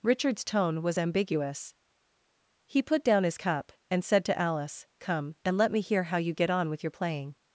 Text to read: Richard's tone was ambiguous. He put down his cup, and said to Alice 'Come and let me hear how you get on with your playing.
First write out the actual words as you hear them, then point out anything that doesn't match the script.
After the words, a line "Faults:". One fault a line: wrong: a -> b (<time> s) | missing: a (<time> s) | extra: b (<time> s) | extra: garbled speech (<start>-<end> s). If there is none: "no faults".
Richard's tone was ambiguous. He put down his cup, and said to Alice 'Come and let me hear how you get on with your playing.
Faults:
no faults